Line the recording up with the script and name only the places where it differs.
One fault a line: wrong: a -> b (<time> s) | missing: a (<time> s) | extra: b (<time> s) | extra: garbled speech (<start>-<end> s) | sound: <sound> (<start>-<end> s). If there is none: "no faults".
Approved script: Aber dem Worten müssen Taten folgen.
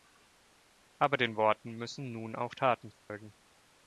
wrong: dem -> den (1.2 s)
extra: nun auch (2.1 s)
sound: dropout (3.0-3.1 s)